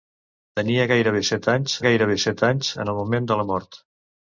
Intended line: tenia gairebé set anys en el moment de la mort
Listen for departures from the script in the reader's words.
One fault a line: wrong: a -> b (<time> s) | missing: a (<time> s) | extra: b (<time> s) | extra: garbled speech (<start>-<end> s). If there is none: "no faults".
extra: gairebé set anys (1.9 s)